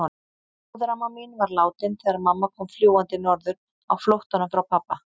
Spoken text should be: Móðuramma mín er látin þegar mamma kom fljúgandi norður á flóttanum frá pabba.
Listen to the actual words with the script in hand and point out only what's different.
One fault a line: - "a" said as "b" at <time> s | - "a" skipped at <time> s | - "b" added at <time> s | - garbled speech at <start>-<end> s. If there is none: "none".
- "er" said as "var" at 1.4 s